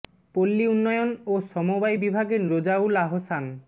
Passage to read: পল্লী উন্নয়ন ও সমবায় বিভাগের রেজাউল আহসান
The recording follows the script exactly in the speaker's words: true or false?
true